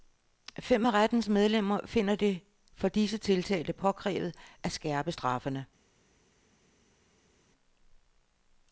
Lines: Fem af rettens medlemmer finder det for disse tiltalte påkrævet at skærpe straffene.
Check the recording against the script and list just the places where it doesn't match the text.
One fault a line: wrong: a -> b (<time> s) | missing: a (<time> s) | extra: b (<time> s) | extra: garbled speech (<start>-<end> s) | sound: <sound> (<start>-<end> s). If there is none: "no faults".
no faults